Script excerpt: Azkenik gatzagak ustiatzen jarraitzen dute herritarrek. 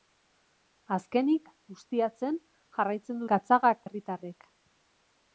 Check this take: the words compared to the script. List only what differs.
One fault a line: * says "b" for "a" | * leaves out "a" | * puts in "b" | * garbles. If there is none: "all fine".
* leaves out "gatzagak"
* says "gatzagak" for "dute"